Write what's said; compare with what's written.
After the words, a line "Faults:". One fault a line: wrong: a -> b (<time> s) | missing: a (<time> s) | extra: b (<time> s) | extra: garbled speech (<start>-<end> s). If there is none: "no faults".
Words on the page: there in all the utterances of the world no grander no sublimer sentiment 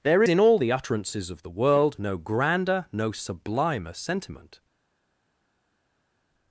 there in all the utterances of the world no grander no sublimer sentiment
Faults:
no faults